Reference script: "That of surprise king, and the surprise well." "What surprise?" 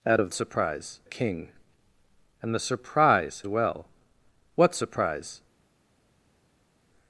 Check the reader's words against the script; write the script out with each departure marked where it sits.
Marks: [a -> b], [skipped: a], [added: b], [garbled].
"That of surprise king, and the surprise well." "What surprise?"